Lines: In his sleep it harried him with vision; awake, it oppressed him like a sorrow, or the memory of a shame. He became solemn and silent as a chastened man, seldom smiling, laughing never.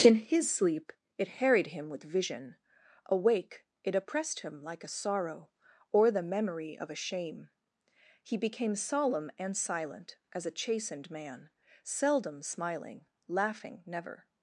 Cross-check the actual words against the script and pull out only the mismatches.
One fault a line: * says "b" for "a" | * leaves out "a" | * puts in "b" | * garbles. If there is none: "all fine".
all fine